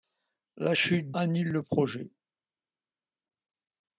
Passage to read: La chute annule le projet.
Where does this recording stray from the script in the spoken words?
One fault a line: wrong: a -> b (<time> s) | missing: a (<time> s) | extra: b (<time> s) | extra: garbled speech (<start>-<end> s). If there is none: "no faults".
no faults